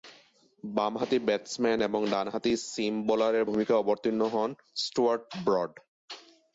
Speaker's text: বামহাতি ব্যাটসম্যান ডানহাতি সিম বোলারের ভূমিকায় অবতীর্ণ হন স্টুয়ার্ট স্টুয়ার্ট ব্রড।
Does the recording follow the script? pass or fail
fail